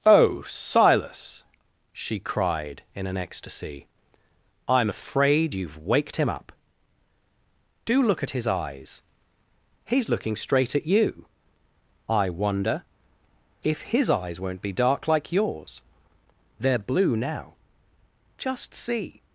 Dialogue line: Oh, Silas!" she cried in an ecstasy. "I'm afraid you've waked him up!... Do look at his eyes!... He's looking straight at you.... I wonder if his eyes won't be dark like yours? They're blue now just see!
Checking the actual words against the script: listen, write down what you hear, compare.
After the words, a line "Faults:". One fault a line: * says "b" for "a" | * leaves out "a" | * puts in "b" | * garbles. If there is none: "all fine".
Oh, Silas!" she cried in an ecstasy. "I'm afraid you've waked him up!... Do look at his eyes!... He's looking straight at you.... I wonder if his eyes won't be dark like yours? They're blue now just see!
Faults:
all fine